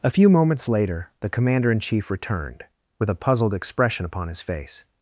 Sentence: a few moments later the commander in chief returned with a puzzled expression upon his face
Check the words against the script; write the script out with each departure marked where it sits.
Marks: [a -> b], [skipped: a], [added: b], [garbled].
a few moments later the commander in chief returned with a puzzled expression upon his face